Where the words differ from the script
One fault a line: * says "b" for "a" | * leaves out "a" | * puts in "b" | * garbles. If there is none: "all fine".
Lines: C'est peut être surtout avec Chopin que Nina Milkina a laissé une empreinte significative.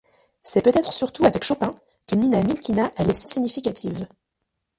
* leaves out "une empreinte"